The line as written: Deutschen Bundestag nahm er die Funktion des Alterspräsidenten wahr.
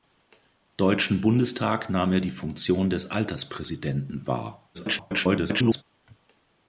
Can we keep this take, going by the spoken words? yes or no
no